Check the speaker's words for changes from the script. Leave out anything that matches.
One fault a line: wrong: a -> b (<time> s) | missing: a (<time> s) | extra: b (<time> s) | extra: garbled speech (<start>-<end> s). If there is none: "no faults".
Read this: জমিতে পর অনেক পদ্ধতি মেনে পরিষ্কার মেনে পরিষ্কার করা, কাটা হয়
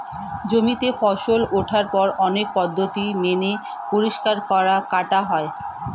extra: ফসল ওঠার (1.0 s)
missing: মেনে পরিষ্কার (4.4 s)